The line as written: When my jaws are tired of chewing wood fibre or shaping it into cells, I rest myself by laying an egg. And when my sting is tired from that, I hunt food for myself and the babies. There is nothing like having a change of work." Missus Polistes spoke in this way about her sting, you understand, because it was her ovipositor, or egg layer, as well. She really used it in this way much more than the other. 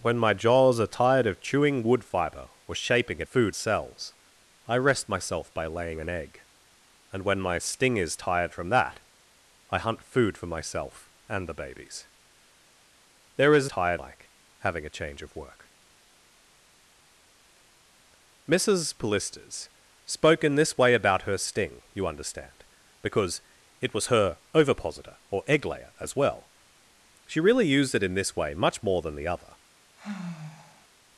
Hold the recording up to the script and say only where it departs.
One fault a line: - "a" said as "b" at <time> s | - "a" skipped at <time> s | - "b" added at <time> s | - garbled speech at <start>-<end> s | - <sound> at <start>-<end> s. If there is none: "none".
- "into" said as "food" at 3.2 s
- "nothing" said as "tired" at 13.7 s
- sigh at 30.0-30.9 s